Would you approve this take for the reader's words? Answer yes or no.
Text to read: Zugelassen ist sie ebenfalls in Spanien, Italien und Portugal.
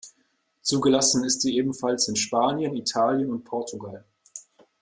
yes